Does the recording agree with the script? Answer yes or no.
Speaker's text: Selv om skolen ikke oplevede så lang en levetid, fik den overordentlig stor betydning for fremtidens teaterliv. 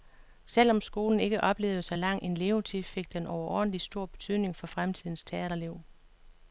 yes